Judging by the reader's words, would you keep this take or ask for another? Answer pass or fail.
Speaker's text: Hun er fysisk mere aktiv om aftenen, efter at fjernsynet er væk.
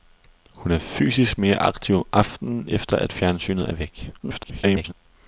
fail